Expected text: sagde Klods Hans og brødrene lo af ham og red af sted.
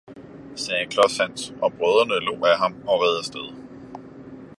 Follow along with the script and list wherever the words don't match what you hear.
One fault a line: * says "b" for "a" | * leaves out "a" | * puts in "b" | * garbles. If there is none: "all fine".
all fine